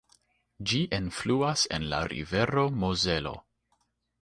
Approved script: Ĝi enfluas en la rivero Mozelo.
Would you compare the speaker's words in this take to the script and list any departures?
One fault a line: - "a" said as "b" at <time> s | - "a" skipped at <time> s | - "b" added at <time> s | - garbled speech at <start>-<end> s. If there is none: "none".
none